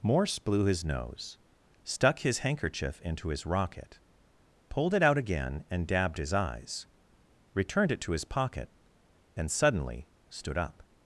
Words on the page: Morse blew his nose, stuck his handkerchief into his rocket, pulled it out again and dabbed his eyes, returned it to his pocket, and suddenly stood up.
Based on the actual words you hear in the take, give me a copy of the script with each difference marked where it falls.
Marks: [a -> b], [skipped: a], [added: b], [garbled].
Morse blew his nose, stuck his handkerchief into his rocket, pulled it out again and dabbed his eyes, returned it to his pocket, and suddenly stood up.